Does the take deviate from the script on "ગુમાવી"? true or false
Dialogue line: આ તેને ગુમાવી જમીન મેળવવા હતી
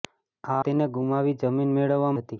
false